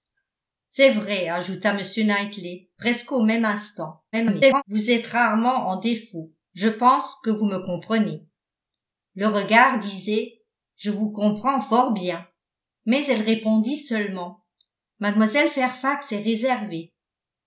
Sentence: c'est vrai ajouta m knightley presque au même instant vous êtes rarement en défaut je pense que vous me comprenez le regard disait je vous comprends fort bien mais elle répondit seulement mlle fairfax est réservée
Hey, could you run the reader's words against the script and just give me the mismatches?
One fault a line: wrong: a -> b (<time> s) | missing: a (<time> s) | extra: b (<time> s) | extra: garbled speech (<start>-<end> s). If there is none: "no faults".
extra: garbled speech (4.1-4.6 s)